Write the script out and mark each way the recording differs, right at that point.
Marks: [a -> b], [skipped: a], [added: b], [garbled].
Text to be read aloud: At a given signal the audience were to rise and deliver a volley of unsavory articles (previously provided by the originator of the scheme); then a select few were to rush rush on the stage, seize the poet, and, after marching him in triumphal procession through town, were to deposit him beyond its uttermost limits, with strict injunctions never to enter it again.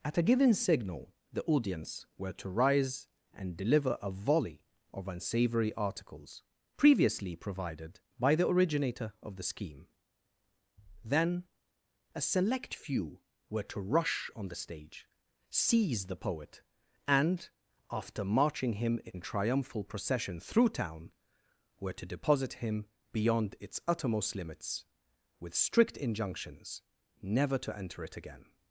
At a given signal the audience were to rise and deliver a volley of unsavory articles (previously provided by the originator of the scheme); then a select few were to rush [skipped: rush] on the stage, seize the poet, and, after marching him in triumphal procession through town, were to deposit him beyond its uttermost limits, with strict injunctions never to enter it again.